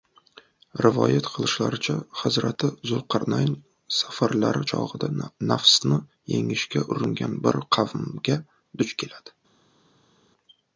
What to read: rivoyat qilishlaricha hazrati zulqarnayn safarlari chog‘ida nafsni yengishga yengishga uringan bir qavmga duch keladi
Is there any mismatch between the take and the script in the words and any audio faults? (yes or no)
yes